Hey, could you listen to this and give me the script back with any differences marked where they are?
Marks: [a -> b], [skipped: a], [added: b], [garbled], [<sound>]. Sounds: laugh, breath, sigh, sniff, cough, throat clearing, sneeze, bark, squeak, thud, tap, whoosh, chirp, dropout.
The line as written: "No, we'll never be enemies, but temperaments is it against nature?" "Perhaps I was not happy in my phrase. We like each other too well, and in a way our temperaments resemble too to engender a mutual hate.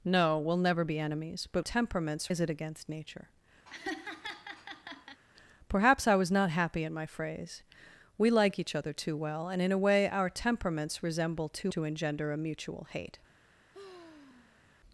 "No, we'll never be enemies, but temperaments is it against nature?" [laugh] "Perhaps I was not happy in my phrase. We like each other too well, and in a way our temperaments resemble too to engender a mutual hate. [sigh]